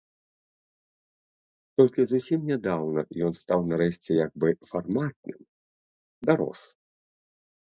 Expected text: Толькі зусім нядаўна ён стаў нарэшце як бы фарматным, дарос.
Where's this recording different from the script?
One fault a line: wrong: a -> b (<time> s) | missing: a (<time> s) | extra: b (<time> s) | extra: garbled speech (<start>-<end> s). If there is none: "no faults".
no faults